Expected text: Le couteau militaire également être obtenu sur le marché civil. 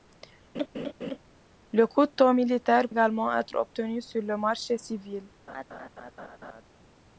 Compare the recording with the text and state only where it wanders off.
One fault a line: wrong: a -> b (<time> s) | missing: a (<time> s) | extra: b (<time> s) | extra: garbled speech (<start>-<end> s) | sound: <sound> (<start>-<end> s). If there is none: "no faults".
sound: laugh (0.5-1.2 s)
sound: laugh (5.5-6.6 s)